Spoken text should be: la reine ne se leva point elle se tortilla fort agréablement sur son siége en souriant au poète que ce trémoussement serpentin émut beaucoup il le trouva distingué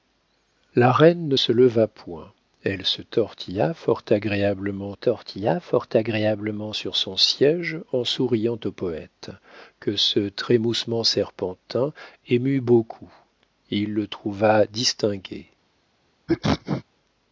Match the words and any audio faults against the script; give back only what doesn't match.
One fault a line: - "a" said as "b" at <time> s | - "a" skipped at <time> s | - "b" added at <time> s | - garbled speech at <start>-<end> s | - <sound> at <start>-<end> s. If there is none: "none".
- "tortilla fort agréablement" added at 4.9 s
- sneeze at 16.3-16.8 s